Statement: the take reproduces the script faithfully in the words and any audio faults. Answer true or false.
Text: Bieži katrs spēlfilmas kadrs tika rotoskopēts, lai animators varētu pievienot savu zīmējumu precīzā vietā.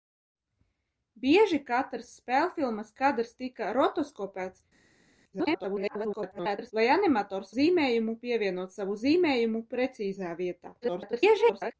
false